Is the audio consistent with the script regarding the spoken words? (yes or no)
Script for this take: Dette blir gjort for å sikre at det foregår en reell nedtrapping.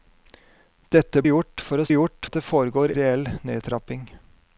no